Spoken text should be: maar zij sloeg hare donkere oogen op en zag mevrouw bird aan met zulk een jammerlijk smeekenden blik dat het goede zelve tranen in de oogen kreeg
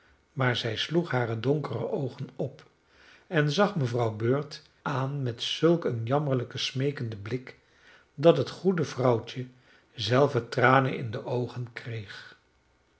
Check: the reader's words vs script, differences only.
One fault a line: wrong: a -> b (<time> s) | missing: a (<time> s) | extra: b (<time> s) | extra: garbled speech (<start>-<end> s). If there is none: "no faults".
extra: vrouwtje (8.8 s)